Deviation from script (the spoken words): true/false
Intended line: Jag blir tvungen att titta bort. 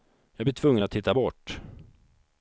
false